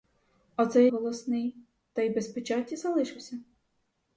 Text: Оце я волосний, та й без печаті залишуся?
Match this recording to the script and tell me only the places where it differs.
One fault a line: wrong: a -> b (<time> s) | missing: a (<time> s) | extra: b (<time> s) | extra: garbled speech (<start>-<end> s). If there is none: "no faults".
no faults